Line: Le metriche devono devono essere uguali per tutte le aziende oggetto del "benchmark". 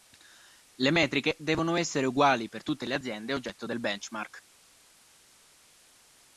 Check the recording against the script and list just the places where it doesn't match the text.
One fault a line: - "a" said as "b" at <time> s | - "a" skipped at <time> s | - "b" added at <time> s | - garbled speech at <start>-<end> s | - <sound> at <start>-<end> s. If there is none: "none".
- "devono" skipped at 1.7 s